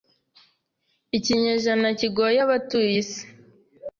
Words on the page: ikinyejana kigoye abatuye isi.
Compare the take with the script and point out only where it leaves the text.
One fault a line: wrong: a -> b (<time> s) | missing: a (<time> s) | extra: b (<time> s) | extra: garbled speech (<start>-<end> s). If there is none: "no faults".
no faults